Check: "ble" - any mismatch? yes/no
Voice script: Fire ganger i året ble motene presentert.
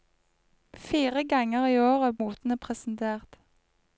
yes